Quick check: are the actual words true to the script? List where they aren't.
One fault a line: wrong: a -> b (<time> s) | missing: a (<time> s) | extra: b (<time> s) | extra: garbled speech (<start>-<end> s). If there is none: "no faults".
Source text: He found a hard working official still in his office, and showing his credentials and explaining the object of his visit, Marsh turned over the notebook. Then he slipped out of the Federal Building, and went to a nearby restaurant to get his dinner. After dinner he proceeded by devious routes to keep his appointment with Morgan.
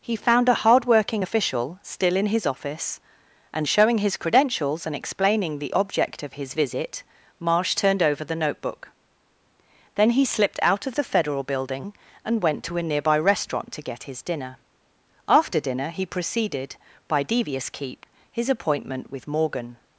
missing: routes to (17.7 s)